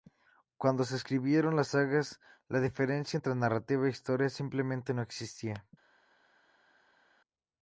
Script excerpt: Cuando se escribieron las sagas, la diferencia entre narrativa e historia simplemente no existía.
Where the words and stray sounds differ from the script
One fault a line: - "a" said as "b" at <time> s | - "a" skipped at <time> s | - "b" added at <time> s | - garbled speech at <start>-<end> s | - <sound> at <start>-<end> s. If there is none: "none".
none